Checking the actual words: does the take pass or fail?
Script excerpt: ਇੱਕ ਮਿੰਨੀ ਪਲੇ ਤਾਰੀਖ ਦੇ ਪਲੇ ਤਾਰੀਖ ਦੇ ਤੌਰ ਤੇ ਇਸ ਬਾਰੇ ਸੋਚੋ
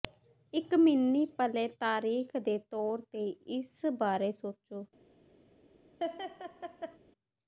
fail